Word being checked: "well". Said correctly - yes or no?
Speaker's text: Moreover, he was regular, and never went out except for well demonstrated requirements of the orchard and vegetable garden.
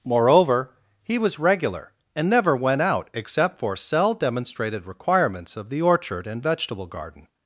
no